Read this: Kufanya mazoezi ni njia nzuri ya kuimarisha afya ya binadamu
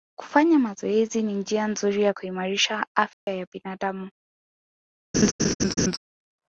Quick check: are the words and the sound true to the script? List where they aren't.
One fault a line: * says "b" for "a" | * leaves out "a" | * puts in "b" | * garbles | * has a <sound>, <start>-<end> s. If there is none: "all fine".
* has a dropout, 3.1-3.3 s
* has a laugh, 5.1-6.0 s